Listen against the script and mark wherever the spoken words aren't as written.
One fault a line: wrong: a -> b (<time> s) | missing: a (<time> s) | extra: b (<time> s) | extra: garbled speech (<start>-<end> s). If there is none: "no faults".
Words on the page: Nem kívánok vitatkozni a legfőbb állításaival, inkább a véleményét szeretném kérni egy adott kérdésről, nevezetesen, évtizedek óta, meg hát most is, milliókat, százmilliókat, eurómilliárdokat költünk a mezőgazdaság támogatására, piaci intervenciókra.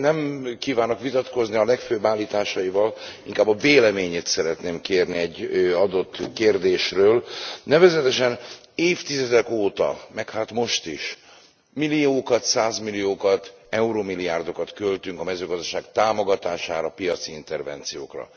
no faults